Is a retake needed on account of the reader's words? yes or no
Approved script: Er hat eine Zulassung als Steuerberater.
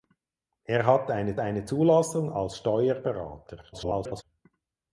yes